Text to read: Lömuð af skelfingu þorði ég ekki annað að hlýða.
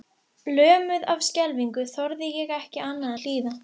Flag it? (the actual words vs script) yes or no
no